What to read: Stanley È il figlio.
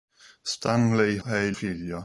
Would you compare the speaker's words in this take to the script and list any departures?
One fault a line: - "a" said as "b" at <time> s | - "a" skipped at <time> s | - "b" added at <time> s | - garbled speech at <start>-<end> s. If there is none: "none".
none